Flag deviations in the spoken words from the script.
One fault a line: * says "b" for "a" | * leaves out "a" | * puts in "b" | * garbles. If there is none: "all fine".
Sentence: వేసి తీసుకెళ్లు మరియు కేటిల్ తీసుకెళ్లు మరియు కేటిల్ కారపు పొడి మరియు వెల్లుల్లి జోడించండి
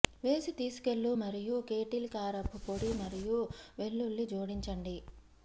* leaves out "తీసుకెళ్లు మరియు కేటిల్"